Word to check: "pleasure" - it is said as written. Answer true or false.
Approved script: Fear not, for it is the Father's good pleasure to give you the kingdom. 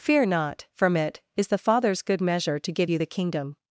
false